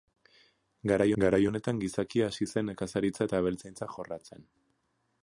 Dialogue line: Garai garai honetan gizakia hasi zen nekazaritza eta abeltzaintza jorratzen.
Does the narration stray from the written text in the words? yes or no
no